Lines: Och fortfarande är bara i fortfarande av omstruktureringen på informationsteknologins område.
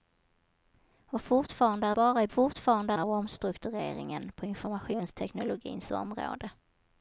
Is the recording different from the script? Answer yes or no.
no